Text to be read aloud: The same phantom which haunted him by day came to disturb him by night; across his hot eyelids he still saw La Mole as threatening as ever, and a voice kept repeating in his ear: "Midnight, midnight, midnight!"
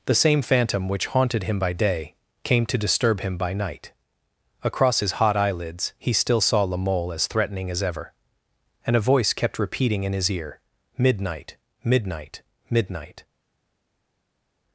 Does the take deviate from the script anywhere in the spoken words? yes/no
no